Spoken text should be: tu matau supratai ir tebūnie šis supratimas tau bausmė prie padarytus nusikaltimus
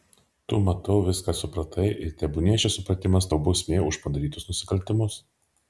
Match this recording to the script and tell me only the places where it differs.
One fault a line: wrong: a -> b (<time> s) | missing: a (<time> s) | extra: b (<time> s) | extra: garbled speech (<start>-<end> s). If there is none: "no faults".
extra: viską (1.1 s)
wrong: prie -> už (3.9 s)